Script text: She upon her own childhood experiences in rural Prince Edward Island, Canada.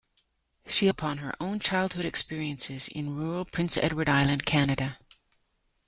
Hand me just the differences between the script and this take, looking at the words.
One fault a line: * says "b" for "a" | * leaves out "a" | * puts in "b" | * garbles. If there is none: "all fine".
all fine